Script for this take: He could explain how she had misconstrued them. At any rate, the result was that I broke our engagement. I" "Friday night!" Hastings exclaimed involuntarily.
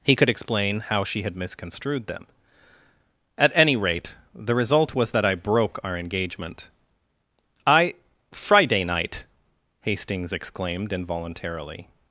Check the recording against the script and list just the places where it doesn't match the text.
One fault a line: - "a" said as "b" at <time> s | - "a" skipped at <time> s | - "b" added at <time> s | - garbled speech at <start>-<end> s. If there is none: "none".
none